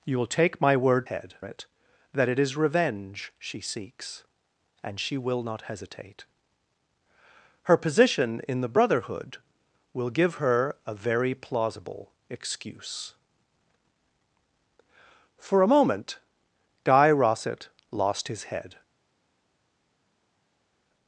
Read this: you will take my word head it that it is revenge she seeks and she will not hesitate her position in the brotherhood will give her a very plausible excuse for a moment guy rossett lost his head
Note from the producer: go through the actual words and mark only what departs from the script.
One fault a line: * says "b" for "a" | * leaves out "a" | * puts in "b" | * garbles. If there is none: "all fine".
all fine